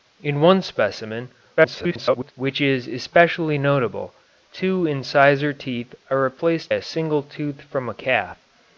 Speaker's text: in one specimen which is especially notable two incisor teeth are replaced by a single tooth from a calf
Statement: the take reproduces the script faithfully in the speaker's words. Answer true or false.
false